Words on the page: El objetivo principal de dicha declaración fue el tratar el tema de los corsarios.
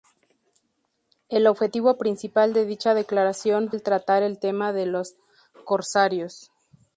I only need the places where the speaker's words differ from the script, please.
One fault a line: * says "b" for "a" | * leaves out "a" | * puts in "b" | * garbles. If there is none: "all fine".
* leaves out "fue"